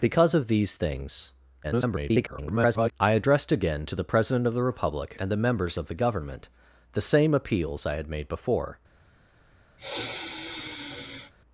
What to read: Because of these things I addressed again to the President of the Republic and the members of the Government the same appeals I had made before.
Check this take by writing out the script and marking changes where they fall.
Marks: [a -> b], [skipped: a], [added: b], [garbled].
Because of these things [garbled] I addressed again to the President of the Republic and the members of the Government the same appeals I had made before.